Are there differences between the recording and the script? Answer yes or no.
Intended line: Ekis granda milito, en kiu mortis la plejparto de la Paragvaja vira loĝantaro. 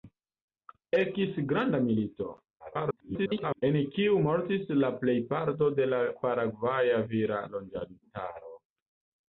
yes